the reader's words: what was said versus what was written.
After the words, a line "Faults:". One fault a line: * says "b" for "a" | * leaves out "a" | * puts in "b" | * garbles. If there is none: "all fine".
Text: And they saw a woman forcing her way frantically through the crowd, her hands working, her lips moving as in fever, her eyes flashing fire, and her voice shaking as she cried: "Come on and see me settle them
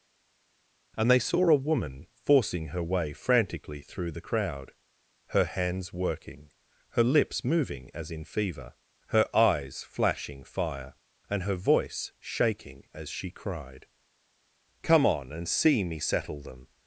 And they saw a woman forcing her way frantically through the crowd, her hands working, her lips moving as in fever, her eyes flashing fire, and her voice shaking as she cried: "Come on and see me settle them
Faults:
all fine